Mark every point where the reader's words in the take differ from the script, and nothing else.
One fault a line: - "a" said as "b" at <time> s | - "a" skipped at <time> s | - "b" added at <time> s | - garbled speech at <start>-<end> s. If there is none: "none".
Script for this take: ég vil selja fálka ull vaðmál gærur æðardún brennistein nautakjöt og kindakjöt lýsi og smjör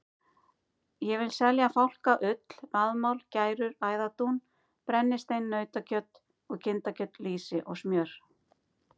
none